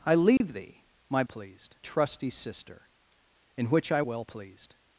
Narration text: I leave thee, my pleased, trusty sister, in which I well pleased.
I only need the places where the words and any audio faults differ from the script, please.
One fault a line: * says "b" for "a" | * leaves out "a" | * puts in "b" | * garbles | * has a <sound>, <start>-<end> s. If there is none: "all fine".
* has a dropout, 0.4-0.4 s